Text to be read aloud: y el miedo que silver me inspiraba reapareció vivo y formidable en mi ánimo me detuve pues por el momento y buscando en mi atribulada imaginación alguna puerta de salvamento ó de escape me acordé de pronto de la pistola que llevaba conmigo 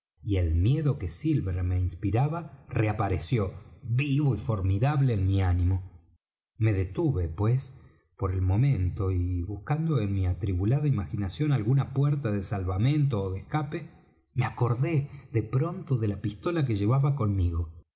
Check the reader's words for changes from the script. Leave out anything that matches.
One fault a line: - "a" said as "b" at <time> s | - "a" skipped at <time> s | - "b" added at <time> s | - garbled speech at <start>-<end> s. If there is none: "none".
none